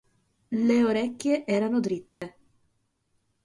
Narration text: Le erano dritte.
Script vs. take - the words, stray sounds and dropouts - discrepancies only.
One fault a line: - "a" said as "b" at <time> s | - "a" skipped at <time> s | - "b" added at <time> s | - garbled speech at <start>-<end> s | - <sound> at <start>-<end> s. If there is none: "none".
- "orecchie" added at 0.8 s
- dropout at 2.1-2.2 s